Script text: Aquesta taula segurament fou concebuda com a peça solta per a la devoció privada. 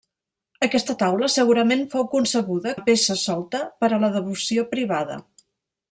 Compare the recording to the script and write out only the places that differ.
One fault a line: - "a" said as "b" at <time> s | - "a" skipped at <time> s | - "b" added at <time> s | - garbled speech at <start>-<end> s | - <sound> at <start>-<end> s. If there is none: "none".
- "com" skipped at 2.7 s